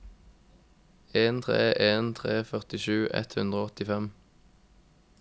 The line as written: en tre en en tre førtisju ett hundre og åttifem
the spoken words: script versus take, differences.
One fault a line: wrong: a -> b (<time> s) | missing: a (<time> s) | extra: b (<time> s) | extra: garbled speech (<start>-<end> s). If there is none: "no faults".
missing: en (2.1 s)